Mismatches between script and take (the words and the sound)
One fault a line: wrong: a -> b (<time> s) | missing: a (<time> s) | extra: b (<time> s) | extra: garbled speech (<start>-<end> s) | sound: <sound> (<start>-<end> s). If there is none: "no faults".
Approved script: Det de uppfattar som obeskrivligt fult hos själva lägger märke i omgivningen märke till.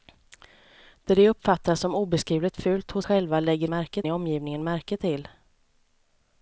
no faults